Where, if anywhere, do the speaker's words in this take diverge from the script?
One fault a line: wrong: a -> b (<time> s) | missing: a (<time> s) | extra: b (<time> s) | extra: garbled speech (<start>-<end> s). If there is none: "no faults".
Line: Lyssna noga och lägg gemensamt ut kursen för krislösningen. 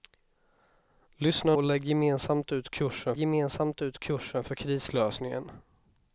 missing: noga (1.6 s)
extra: gemensamt ut kursen (3.2 s)